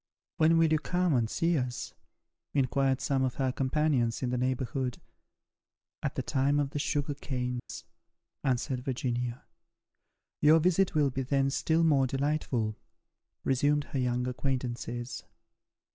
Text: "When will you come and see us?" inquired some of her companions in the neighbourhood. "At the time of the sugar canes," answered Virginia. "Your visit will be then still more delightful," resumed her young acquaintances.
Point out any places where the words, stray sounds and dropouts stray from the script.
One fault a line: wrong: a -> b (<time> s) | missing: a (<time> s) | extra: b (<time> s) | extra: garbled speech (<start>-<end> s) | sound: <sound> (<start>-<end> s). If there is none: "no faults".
sound: dropout (7.6-7.7 s)